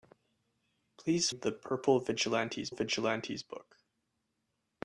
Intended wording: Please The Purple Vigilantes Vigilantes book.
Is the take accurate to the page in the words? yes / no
yes